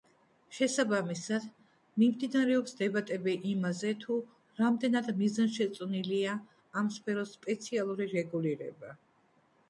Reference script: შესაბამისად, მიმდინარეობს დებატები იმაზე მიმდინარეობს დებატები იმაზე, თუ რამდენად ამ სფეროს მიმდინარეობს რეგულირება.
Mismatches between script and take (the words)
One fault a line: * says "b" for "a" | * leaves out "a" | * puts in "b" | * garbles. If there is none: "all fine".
* leaves out "მიმდინარეობს დებატები იმაზე"
* puts in "მიზანშეწონილია"
* says "სპეციალური" for "მიმდინარეობს"